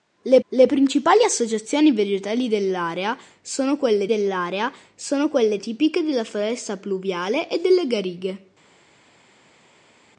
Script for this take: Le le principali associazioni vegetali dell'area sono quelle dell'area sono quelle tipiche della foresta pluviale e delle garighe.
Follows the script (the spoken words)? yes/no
yes